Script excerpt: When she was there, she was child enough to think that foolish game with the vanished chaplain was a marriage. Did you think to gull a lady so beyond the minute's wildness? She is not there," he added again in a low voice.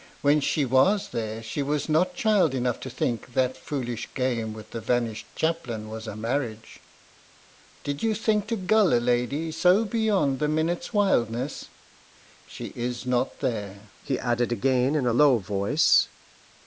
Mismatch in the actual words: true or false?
true